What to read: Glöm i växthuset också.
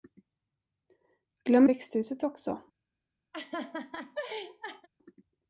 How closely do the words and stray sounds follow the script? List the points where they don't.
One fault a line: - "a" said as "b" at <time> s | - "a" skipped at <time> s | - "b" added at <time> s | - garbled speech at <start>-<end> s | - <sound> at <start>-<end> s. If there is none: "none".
- laugh at 3.3-4.9 s